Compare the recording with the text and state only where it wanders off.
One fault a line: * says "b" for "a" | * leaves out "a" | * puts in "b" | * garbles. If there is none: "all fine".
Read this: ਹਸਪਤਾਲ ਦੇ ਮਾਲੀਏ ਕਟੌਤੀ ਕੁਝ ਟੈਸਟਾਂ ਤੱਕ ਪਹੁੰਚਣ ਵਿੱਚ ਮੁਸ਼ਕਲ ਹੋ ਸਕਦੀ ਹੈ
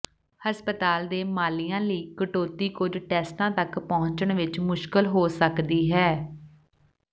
* puts in "ਲਈ"